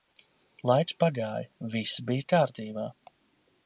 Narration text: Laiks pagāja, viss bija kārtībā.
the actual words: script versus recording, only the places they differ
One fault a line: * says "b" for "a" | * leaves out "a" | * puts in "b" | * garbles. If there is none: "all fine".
all fine